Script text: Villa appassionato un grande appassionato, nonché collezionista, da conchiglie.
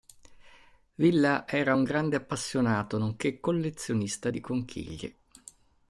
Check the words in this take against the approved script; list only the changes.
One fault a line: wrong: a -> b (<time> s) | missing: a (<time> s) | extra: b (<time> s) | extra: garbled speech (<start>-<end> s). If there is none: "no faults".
wrong: appassionato -> era (1.5 s)
wrong: da -> di (4.3 s)